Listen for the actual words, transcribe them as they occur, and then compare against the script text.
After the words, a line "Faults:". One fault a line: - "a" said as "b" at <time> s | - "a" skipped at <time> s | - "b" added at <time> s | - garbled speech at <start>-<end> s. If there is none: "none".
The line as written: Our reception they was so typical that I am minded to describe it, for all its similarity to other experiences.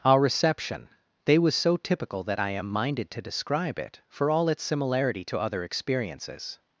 Our reception they was so typical that I am minded to describe it, for all its similarity to other experiences.
Faults:
none